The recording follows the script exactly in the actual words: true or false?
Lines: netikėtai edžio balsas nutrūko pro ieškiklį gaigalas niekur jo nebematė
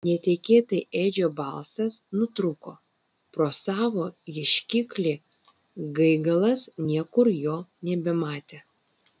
false